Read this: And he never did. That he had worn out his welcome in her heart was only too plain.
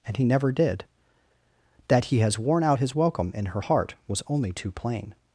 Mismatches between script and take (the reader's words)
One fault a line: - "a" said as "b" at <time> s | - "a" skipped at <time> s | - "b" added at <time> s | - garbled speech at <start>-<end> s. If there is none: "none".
- "had" said as "has" at 2.2 s